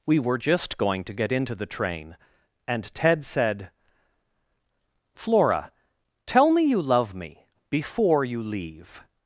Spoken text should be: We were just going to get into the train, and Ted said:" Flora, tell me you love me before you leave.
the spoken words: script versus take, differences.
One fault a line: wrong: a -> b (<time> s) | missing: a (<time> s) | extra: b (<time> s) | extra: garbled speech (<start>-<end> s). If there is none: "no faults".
no faults